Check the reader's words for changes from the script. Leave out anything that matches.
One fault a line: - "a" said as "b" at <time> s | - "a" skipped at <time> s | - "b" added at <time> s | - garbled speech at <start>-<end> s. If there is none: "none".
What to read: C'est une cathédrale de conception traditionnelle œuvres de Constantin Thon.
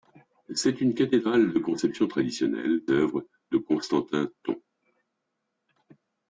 none